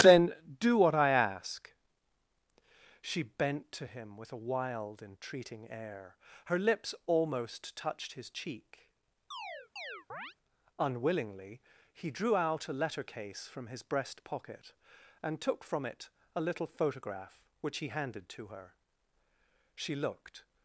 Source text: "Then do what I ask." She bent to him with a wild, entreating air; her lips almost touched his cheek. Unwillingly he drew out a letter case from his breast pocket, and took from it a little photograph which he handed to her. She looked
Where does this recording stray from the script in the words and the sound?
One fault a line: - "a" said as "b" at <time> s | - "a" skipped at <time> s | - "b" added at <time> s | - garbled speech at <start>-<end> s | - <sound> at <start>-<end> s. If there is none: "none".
- chirp at 9.3-10.3 s